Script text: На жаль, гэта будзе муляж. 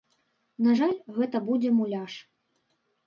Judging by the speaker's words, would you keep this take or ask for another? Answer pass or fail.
pass